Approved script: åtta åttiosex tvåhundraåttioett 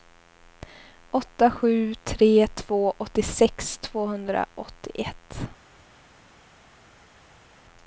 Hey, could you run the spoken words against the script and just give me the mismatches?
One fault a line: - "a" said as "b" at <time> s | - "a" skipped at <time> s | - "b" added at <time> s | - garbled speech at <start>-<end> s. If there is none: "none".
- "sju tre två" added at 1.5 s